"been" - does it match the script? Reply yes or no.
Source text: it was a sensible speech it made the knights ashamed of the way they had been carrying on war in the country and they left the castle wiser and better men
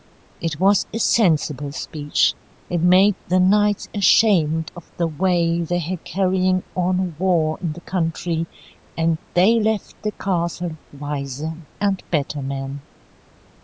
no